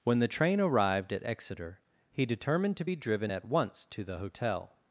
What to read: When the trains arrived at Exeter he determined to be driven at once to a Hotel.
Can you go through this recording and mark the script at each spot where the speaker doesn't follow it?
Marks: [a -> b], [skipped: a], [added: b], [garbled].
When the [trains -> train] arrived at Exeter he determined to be driven at once to [a -> the] Hotel.